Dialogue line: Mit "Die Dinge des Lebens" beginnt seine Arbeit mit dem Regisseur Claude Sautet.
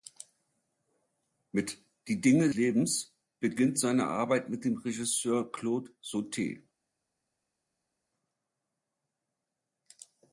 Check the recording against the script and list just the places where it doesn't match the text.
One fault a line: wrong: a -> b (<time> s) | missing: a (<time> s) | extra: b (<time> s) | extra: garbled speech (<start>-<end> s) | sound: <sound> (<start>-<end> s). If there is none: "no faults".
missing: des (2.5 s)